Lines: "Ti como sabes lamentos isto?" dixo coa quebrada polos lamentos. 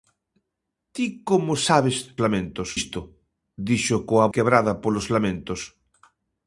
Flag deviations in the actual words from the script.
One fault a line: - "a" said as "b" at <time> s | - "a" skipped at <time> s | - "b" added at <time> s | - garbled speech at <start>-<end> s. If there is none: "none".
none